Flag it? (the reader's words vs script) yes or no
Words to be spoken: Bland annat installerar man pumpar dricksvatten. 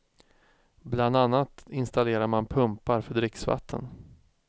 yes